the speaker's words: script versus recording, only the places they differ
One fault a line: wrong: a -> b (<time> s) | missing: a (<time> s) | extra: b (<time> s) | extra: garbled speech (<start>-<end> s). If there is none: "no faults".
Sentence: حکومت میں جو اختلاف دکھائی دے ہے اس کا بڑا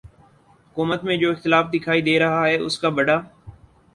extra: رہا (2.2 s)